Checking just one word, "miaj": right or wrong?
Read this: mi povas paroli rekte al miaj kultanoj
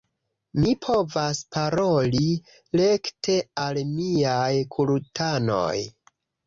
right